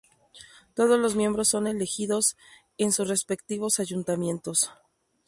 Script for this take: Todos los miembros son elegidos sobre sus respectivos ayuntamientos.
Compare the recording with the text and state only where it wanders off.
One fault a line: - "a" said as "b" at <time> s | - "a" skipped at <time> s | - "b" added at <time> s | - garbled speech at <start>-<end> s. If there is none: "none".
- "sobre" said as "en" at 2.8 s